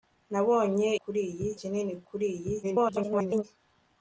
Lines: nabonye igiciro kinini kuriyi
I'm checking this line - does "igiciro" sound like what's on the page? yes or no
no